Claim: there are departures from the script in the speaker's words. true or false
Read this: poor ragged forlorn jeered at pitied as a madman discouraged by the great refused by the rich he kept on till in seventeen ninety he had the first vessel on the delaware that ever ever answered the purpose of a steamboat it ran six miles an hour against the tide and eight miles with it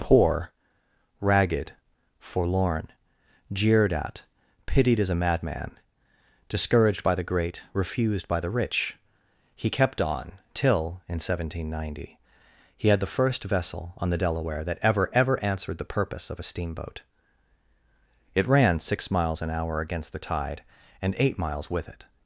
false